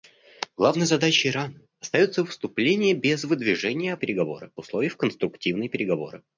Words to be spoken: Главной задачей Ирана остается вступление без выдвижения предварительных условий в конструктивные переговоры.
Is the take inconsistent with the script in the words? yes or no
yes